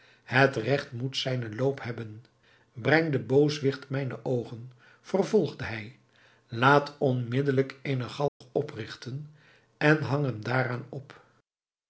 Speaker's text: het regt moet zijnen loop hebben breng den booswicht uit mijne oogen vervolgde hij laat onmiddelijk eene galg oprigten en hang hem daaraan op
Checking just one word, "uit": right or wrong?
wrong